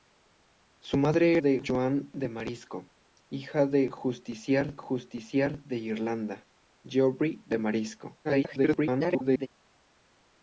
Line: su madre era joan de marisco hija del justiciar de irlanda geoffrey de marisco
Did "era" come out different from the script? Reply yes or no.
yes